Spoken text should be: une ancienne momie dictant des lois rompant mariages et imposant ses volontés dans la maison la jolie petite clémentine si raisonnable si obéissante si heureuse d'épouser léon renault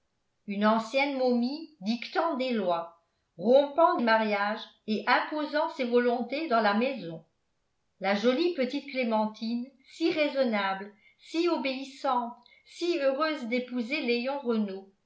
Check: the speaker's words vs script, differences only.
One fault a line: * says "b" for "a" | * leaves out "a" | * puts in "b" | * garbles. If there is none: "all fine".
all fine